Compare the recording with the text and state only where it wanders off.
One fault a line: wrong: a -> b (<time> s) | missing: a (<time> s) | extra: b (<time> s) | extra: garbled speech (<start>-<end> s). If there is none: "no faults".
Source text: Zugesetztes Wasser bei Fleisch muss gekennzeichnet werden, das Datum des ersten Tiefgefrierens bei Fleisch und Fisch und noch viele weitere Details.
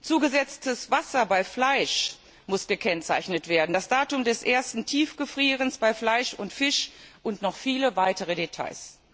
no faults